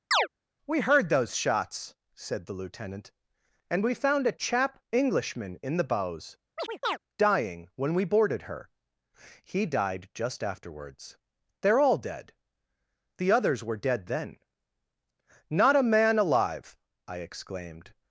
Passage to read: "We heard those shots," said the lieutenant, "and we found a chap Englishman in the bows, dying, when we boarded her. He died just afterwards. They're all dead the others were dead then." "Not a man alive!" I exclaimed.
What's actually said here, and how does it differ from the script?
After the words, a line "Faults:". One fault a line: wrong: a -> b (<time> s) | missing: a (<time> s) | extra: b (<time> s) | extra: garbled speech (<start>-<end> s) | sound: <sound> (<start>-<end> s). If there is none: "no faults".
"We heard those shots," said the lieutenant, "and we found a chap Englishman in the bows, dying, when we boarded her. He died just afterwards. They're all dead the others were dead then." "Not a man alive!" I exclaimed.
Faults:
sound: chirp (0.1-0.3 s)
sound: chirp (6.6-7.0 s)